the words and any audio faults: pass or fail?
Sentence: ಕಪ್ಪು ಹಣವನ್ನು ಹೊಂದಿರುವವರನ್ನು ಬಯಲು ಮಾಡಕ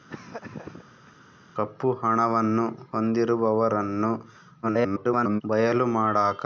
fail